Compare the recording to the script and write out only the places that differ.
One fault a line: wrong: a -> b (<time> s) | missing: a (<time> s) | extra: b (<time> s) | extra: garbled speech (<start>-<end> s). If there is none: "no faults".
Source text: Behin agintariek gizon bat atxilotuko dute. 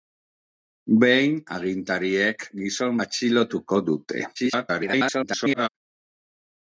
missing: bat (3.0 s)
extra: garbled speech (4.3-5.7 s)